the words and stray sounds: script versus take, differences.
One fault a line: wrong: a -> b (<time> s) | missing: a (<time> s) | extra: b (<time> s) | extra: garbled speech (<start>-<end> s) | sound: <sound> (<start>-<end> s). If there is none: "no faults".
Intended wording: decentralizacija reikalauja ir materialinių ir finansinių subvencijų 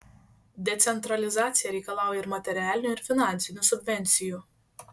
no faults